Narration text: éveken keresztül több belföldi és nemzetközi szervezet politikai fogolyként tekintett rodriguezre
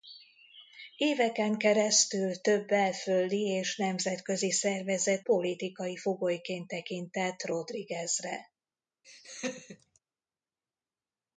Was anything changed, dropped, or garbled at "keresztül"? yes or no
no